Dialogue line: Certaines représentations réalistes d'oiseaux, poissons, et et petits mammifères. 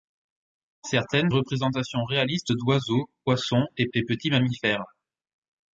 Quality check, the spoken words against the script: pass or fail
pass